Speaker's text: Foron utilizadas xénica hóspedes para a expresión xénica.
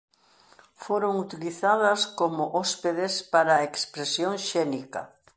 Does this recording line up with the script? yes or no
no